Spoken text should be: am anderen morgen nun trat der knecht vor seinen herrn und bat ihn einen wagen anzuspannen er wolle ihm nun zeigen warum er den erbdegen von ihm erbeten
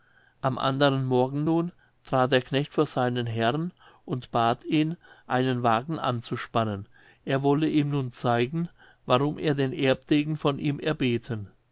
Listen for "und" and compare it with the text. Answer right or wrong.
right